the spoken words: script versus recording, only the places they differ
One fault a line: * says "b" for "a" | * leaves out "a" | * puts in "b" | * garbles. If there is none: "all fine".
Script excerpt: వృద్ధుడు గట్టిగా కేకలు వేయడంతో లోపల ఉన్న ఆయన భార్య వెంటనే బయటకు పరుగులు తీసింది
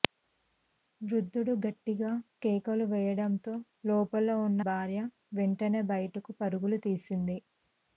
* leaves out "ఆయన"